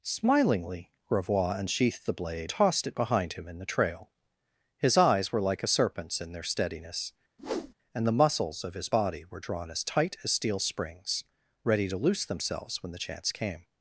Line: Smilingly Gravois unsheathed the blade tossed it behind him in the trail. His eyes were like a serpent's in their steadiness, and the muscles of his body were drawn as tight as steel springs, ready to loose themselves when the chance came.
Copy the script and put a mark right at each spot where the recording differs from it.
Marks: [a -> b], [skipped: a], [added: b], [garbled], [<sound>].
Smilingly Gravois unsheathed the blade tossed it behind him in the trail. His eyes were like a serpent's in their steadiness, [whoosh] and the muscles of his body were drawn as tight as steel springs, ready to loose themselves when the chance came.